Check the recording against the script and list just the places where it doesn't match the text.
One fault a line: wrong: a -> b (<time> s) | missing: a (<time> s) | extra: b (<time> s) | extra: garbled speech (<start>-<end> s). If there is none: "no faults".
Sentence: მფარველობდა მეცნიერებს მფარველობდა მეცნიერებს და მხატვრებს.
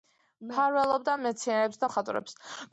missing: მფარველობდა მეცნიერებს (1.9 s)